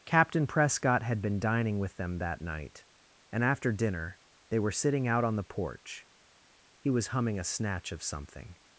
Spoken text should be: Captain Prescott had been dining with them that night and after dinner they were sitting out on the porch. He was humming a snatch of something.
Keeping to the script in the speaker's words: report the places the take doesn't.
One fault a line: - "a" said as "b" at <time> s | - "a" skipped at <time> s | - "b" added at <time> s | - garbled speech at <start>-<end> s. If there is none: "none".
none